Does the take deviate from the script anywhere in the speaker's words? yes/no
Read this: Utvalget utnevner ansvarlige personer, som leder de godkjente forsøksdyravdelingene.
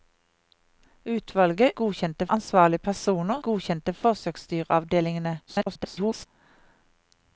yes